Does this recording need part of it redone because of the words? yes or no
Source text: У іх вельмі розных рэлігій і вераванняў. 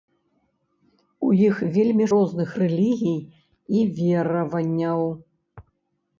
no